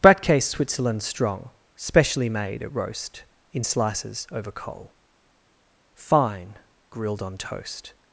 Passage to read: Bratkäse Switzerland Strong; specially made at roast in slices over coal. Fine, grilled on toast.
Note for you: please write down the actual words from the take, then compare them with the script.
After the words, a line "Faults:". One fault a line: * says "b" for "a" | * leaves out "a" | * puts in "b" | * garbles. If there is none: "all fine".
Bratkäse Switzerland Strong; specially made at roast in slices over coal. Fine, grilled on toast.
Faults:
all fine